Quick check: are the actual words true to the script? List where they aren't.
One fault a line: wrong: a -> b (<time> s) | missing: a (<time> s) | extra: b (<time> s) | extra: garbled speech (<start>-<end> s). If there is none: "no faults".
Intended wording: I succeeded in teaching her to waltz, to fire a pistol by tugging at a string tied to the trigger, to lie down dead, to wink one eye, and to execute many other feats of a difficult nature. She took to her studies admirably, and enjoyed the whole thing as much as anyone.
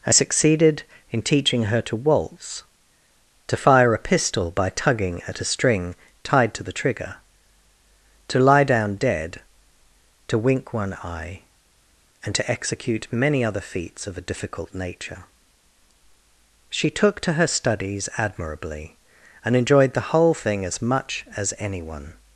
no faults